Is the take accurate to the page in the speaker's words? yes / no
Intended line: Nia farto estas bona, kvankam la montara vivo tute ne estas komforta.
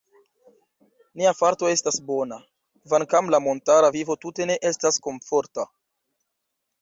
yes